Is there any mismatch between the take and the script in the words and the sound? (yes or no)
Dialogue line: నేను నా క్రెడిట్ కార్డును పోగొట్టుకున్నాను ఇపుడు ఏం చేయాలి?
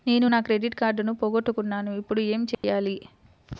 yes